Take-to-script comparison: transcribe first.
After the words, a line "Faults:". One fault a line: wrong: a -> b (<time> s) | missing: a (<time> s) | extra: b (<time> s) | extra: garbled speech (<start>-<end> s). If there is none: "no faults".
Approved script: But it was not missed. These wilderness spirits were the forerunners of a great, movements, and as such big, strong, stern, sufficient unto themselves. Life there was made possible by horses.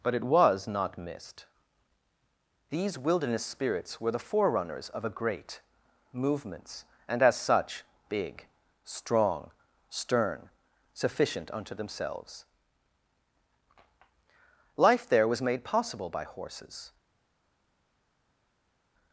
But it was not missed. These wilderness spirits were the forerunners of a great, movements, and as such big, strong, stern, sufficient unto themselves. Life there was made possible by horses.
Faults:
no faults